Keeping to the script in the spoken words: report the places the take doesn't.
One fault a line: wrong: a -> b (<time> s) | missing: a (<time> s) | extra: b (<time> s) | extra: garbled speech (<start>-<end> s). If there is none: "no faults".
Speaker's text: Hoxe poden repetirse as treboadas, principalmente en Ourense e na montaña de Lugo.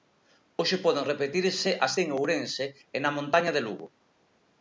missing: treboadas principalmente (1.9 s)